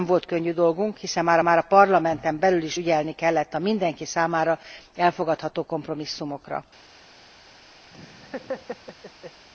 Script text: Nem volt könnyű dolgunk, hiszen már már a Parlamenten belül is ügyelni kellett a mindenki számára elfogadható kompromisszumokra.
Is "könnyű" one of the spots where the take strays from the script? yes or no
no